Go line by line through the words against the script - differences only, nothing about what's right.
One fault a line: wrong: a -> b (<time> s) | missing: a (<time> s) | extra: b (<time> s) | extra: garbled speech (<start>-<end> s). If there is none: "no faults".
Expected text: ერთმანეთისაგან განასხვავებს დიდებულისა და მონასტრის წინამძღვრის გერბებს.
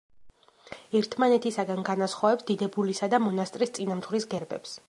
no faults